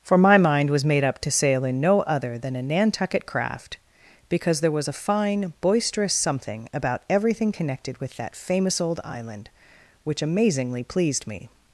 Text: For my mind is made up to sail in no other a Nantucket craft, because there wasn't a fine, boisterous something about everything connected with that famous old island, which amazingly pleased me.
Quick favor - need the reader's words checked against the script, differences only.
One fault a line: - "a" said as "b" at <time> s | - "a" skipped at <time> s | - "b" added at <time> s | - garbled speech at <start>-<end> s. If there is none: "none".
- "is" said as "was" at 0.7 s
- "than" added at 2.4 s
- "wasn't" said as "was" at 4.7 s